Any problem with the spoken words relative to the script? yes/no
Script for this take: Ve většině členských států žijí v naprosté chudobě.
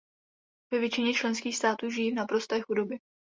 no